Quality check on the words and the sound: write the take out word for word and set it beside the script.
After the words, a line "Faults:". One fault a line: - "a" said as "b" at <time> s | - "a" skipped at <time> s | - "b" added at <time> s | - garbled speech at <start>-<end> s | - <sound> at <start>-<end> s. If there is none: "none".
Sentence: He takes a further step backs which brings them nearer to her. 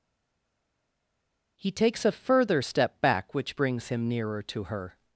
He takes a further step back which brings him nearer to her.
Faults:
- "backs" said as "back" at 3.0 s
- "them" said as "him" at 3.9 s